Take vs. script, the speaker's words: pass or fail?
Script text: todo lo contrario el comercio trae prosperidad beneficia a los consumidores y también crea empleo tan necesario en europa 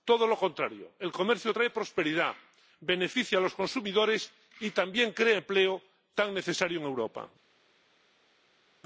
pass